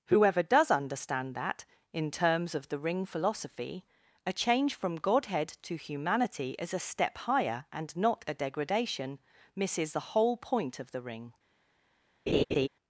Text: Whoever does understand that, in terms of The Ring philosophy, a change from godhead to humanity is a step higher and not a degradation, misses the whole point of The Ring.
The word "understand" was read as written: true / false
true